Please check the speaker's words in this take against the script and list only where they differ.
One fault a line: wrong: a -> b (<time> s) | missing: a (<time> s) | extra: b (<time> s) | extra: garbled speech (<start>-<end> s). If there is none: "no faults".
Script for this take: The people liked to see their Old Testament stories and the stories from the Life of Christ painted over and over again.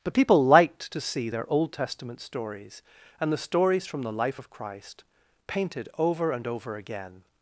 wrong: The -> But (0.0 s)